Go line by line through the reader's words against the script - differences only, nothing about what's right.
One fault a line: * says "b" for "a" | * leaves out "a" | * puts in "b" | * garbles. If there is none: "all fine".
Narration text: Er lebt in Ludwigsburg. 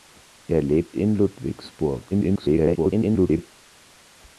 * garbles